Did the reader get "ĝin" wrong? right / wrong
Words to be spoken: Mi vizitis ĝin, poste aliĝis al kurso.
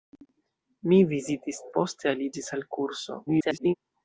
wrong